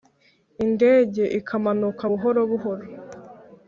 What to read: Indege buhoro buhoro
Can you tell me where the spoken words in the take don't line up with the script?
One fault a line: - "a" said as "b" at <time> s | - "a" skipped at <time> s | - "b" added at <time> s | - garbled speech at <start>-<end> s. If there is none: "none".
- "ikamanuka" added at 1.4 s